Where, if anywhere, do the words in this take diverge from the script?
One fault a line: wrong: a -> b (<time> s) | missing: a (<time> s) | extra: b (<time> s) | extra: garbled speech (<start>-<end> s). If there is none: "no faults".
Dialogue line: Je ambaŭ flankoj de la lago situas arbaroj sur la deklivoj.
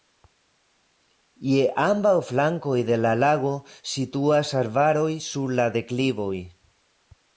no faults